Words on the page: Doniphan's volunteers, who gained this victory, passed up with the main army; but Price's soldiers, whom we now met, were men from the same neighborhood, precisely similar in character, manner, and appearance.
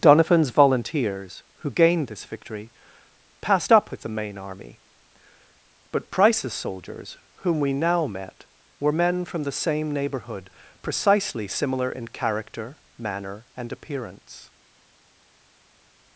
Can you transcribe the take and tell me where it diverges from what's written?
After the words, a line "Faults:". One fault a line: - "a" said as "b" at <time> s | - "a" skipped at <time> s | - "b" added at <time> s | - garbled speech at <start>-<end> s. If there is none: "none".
Doniphan's volunteers, who gained this victory, passed up with the main army; but Price's soldiers, whom we now met, were men from the same neighborhood, precisely similar in character, manner, and appearance.
Faults:
none